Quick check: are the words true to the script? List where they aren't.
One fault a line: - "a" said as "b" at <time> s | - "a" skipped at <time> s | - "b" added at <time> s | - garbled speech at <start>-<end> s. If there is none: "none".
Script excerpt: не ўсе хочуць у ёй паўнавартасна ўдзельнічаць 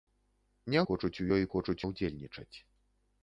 - "ўсе" skipped at 0.8 s
- "паўнавартасна" said as "хочуць" at 1.5 s